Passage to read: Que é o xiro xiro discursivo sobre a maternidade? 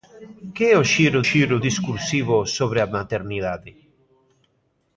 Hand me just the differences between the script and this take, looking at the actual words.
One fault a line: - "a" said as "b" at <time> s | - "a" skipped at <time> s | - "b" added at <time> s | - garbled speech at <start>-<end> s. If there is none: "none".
none